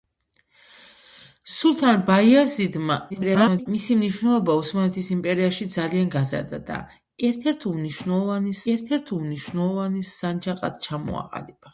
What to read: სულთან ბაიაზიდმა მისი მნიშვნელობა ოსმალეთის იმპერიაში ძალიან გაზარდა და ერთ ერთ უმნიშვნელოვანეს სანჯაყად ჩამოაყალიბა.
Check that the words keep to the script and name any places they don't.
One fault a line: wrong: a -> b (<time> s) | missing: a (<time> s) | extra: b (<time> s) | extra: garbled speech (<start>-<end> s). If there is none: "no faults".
extra: garbled speech (3.1-3.7 s)
extra: ერთ ერთ უმნიშვნელოვანეს (8.7 s)